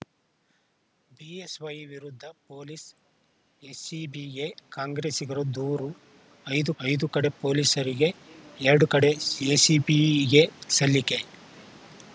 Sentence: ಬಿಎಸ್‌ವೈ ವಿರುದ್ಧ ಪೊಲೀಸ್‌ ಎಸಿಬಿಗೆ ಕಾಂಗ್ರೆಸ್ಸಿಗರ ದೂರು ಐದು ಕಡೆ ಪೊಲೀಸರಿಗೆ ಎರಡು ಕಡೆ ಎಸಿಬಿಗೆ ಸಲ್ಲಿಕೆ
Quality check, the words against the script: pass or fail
fail